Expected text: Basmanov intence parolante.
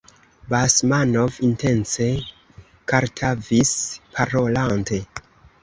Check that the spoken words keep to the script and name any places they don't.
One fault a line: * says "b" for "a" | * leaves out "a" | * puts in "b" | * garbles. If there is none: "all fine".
* puts in "kartavis"